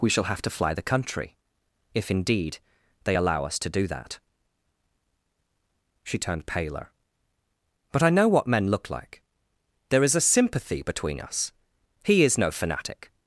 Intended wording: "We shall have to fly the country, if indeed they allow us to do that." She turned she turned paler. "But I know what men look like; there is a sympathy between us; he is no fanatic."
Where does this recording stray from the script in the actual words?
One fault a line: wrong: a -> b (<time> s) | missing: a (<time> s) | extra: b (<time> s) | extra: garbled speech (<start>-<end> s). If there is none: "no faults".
missing: she turned (6.5 s)